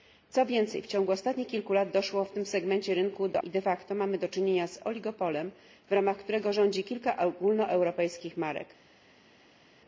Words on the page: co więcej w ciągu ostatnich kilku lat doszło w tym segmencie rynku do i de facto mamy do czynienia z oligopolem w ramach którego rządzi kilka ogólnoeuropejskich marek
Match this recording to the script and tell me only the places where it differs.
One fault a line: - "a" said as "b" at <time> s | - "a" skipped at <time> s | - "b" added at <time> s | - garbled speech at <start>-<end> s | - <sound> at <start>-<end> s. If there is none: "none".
none